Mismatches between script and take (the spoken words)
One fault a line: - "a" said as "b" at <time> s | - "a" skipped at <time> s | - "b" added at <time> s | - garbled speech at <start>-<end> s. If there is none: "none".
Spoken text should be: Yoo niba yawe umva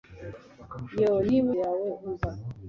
none